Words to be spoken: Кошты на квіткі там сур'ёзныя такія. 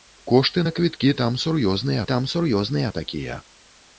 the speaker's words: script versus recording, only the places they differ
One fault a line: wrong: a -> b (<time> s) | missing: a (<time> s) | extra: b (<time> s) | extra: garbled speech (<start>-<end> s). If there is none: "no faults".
extra: там сур'ёзныя (2.1 s)